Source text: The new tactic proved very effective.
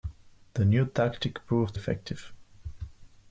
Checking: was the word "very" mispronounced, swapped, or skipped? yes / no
yes